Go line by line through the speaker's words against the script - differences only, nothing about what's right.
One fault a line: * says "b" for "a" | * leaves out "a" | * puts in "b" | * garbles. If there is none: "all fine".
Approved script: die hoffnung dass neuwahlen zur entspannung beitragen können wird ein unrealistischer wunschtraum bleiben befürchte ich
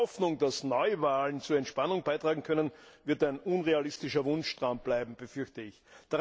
all fine